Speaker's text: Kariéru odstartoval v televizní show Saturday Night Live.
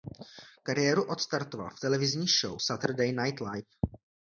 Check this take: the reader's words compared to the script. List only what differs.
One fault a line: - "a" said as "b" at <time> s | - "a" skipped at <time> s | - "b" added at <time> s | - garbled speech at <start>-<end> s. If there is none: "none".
none